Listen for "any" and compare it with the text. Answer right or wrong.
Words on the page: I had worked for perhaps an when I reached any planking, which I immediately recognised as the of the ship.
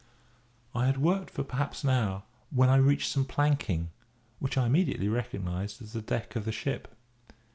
wrong